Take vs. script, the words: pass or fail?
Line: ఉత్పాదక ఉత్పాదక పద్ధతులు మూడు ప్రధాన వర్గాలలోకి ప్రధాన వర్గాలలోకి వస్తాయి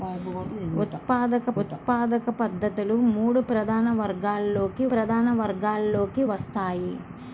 pass